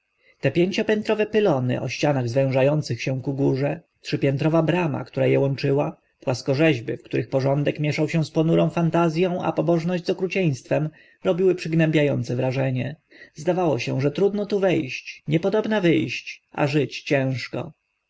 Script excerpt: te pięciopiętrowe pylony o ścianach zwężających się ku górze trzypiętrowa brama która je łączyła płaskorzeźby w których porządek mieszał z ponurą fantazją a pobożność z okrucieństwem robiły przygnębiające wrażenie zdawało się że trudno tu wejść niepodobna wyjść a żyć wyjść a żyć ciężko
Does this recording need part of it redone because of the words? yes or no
yes